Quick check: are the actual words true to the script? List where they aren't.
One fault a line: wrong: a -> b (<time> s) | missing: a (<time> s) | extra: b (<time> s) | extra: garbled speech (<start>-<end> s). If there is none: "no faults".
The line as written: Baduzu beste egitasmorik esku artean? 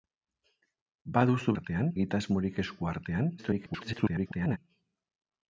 wrong: beste -> artean (1.6 s)
extra: garbled speech (3.4-4.6 s)